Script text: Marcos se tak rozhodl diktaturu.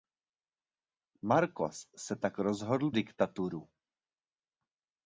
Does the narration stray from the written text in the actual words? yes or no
no